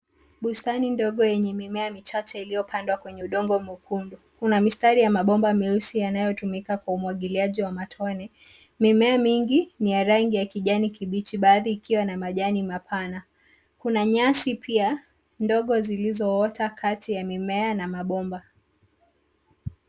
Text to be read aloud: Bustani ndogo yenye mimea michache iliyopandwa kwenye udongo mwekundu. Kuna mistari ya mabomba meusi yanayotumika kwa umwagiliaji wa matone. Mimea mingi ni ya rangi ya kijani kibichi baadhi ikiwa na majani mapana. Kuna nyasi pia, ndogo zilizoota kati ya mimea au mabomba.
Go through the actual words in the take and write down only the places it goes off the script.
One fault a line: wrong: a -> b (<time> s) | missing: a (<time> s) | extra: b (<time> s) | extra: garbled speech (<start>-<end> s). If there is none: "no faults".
wrong: au -> na (17.7 s)